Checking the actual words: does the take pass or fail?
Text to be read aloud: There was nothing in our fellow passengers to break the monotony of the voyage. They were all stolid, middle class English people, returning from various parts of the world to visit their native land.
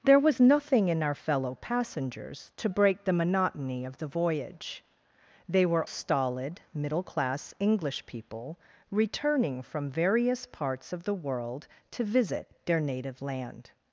fail